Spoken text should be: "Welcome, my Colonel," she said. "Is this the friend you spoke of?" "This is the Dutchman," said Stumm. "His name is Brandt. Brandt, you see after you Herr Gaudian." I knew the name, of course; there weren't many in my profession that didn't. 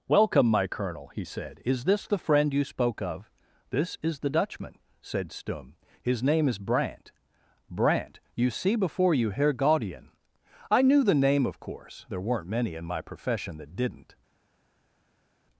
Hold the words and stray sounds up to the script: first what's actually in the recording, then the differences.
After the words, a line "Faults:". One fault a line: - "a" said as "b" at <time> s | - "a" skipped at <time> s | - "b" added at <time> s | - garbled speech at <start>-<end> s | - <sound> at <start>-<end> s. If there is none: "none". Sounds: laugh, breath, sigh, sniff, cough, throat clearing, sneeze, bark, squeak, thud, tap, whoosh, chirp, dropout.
"Welcome, my Colonel," he said. "Is this the friend you spoke of?" "This is the Dutchman," said Stumm. "His name is Brandt. Brandt, you see before you Herr Gaudian." I knew the name, of course; there weren't many in my profession that didn't.
Faults:
- "she" said as "he" at 1.1 s
- "after" said as "before" at 8.8 s